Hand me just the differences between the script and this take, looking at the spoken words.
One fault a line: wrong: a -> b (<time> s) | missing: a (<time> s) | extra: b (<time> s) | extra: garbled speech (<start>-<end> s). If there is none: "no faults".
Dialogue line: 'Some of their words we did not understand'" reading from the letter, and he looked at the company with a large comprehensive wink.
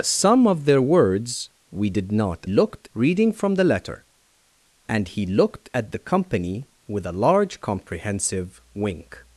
wrong: understand -> looked (2.5 s)